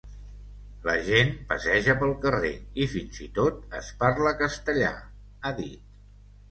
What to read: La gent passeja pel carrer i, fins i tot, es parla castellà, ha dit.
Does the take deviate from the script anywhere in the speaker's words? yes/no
no